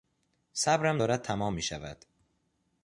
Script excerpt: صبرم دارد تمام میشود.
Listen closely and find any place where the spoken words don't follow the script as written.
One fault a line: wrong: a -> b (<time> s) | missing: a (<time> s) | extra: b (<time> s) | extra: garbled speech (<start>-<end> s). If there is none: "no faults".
no faults